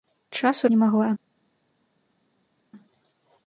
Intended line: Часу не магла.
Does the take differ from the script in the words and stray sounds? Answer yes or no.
no